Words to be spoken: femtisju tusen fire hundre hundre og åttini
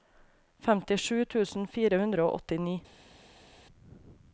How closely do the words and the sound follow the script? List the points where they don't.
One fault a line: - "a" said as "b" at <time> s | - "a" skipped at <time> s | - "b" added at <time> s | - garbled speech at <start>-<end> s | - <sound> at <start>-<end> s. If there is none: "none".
- "hundre" skipped at 2.2 s